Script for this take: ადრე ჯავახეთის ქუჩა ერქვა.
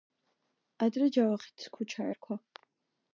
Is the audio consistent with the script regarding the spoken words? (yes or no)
yes